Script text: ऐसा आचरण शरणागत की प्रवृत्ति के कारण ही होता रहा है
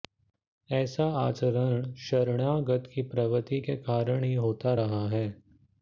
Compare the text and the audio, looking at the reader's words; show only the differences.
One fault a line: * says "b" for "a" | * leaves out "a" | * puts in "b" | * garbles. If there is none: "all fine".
all fine